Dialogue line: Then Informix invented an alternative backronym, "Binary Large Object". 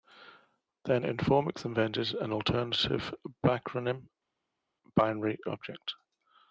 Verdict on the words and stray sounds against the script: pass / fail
fail